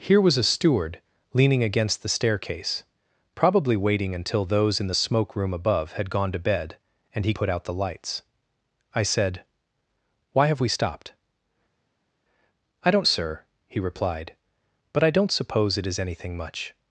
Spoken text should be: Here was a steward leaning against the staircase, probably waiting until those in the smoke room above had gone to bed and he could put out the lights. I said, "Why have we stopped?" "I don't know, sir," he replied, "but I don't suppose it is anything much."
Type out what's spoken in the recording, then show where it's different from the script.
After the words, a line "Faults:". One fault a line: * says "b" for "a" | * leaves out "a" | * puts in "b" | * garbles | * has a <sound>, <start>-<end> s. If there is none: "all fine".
Here was a steward leaning against the staircase, probably waiting until those in the smoke room above had gone to bed and he put out the lights. I said, "Why have we stopped?" "I don't sir," he replied, "but I don't suppose it is anything much."
Faults:
* leaves out "could"
* leaves out "know"